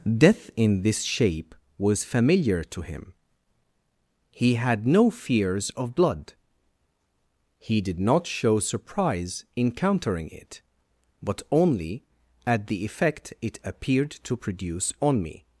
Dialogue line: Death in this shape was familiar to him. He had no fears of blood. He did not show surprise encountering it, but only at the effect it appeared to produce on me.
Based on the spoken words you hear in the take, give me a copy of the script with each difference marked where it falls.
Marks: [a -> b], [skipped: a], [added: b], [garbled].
Death in this shape was familiar to him. He had no fears of blood. He did not show surprise encountering it, but only at the effect it appeared to produce on me.